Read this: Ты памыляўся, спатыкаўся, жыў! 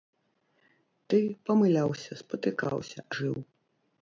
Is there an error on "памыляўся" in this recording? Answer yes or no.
no